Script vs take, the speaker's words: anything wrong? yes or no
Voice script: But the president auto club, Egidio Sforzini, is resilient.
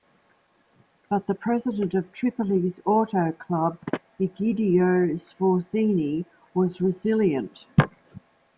yes